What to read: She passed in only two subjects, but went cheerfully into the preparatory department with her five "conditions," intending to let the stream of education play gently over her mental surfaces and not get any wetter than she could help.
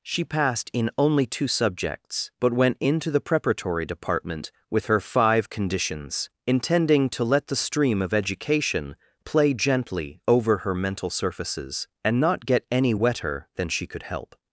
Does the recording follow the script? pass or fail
fail